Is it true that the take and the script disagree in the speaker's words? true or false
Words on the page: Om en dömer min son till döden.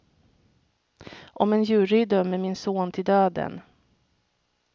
true